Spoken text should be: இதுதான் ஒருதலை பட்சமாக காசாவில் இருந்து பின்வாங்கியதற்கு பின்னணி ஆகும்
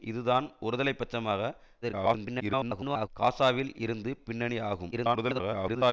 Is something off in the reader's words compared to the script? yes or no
yes